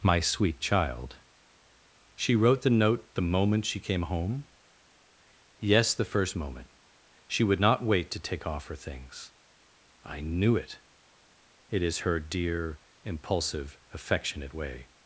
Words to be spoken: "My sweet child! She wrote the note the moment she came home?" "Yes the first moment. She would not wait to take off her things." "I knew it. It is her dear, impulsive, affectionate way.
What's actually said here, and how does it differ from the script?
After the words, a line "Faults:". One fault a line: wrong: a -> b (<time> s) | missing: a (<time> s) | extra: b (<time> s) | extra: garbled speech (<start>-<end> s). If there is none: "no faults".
"My sweet child! She wrote the note the moment she came home?" "Yes the first moment. She would not wait to take off her things." "I knew it. It is her dear, impulsive, affectionate way.
Faults:
no faults